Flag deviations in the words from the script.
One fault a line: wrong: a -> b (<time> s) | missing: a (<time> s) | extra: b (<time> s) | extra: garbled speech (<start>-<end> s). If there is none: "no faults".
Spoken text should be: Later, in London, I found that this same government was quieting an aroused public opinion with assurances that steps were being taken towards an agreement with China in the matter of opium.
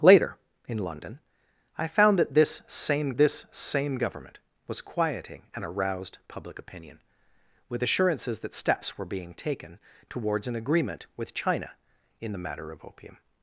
extra: this same (3.2 s)